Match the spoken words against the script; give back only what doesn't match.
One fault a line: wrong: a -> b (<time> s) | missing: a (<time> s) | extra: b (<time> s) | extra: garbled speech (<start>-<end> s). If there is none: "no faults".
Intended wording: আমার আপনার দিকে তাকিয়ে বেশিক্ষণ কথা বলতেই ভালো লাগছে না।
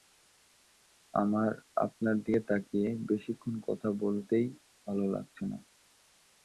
no faults